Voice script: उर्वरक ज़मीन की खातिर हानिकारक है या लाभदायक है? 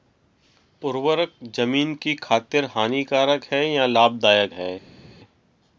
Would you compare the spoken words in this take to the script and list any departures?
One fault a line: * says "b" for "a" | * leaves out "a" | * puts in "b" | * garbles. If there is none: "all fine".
all fine